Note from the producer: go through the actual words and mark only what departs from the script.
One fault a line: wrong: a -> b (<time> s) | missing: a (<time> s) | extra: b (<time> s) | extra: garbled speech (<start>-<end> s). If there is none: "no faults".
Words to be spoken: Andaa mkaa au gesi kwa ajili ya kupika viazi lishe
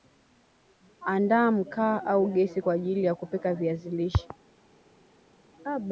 no faults